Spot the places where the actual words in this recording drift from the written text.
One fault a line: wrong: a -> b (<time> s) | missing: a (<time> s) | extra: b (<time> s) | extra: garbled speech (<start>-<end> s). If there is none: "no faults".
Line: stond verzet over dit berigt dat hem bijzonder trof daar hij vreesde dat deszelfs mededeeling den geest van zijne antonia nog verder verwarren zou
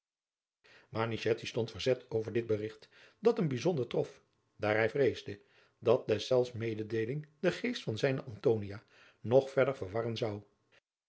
no faults